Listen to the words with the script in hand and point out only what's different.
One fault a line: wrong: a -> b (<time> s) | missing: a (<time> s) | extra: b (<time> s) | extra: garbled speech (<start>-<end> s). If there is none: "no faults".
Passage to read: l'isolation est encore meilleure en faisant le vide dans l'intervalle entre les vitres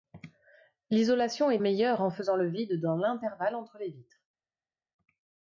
missing: encore (1.6 s)